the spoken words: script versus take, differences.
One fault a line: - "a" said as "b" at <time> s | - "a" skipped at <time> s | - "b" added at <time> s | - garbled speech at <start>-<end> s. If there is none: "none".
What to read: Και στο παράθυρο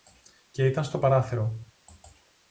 - "ήταν" added at 0.7 s